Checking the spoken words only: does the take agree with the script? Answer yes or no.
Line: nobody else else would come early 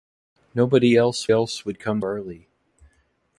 yes